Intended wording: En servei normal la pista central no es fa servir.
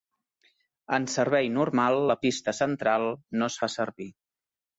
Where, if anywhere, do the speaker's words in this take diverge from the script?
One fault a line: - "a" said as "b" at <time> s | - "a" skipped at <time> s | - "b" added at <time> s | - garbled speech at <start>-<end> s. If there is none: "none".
none